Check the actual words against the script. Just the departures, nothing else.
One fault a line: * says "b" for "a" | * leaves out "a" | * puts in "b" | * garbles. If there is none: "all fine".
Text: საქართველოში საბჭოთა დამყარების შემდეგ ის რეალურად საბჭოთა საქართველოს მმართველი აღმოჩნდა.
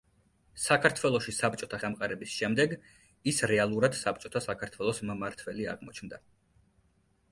all fine